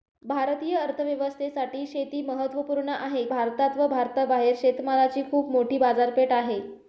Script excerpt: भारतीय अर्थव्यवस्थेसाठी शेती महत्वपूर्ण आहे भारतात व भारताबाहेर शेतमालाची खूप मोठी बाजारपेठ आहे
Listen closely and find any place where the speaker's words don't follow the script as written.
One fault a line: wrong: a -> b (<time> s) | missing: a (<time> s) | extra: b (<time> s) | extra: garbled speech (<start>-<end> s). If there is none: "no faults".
no faults